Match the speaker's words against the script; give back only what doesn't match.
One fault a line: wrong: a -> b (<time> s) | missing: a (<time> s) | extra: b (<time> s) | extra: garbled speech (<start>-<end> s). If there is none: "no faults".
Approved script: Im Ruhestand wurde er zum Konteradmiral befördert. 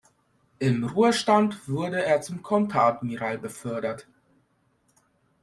no faults